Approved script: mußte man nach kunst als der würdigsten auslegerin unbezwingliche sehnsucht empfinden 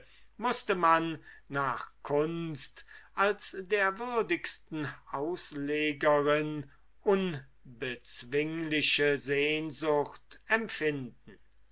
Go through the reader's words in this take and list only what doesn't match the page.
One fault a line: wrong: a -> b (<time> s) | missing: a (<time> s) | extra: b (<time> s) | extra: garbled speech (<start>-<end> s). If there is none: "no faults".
no faults